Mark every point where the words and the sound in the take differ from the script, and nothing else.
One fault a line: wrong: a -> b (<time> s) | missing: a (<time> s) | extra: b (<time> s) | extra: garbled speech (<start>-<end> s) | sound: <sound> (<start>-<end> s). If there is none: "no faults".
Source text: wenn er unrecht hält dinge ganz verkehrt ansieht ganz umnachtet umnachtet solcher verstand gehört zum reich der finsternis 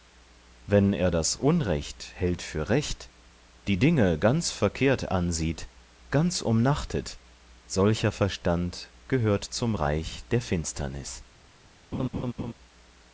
extra: das (1.1 s)
extra: für recht die (2.4 s)
missing: umnachtet (7.2 s)
sound: laugh (11.9-12.5 s)